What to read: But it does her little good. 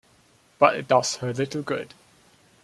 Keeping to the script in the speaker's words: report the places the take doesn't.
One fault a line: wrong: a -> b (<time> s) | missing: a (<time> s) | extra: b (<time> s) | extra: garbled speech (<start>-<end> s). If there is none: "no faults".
no faults